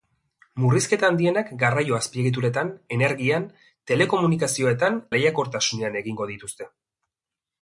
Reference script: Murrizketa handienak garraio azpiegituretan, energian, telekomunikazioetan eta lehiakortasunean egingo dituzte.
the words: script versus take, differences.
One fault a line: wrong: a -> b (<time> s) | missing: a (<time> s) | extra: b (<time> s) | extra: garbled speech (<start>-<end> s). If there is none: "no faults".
missing: eta (5.0 s)